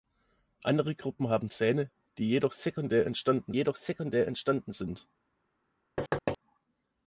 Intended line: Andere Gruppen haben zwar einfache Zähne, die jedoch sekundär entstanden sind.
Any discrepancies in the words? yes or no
yes